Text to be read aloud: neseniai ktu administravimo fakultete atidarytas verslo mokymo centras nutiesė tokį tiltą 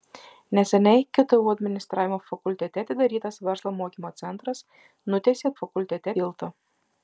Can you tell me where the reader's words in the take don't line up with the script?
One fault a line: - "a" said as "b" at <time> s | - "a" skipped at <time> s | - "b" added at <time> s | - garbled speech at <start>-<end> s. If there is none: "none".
- "tokį" said as "fakultete" at 5.6 s